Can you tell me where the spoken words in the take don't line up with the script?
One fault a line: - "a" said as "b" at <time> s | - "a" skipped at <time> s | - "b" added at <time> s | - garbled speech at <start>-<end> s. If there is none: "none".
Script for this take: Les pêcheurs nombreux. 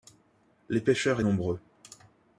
none